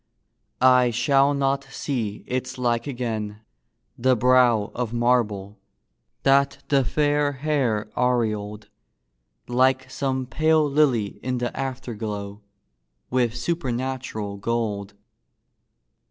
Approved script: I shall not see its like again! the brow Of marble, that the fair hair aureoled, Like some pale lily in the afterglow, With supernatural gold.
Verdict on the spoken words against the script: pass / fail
pass